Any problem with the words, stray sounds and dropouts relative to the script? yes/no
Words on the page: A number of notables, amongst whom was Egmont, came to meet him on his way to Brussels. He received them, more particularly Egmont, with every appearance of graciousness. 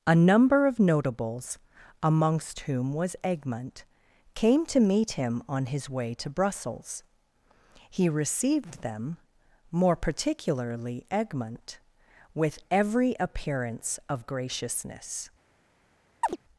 yes